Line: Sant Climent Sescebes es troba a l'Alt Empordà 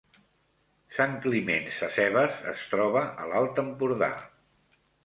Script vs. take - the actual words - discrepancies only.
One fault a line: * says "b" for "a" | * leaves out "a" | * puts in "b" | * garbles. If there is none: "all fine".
all fine